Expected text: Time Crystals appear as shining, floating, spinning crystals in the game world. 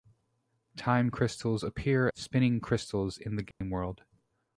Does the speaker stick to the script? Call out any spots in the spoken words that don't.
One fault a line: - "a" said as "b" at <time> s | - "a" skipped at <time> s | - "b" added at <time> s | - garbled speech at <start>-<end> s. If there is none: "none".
- "as shining floating" skipped at 2.1 s